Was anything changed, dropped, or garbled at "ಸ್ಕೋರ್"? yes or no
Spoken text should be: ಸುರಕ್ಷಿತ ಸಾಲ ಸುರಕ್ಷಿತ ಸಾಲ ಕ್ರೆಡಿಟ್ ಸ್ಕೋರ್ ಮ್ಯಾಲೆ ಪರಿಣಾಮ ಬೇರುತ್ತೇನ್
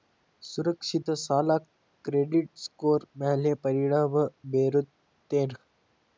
no